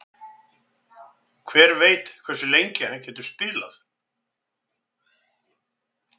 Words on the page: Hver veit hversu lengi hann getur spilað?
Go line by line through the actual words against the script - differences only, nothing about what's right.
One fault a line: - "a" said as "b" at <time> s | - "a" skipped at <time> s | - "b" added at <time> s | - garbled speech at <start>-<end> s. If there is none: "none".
none